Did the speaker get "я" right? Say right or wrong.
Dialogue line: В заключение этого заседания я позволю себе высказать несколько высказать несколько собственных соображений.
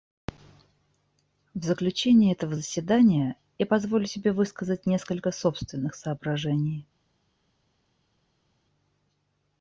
right